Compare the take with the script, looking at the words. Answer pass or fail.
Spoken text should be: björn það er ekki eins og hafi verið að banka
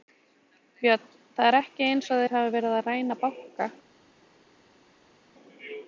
fail